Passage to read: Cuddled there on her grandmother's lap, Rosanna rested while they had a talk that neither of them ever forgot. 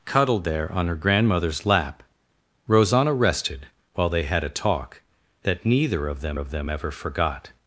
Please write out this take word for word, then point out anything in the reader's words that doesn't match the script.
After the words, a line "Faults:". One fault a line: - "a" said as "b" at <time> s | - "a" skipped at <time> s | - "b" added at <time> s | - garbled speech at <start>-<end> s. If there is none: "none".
Cuddled there on her grandmother's lap, Rosanna rested while they had a talk that neither of them of them ever forgot.
Faults:
- "of them" added at 6.4 s